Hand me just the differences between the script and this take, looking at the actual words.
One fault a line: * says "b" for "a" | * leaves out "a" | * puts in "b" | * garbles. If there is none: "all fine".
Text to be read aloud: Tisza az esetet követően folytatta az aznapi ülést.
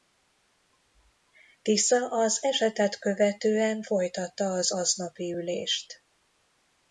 all fine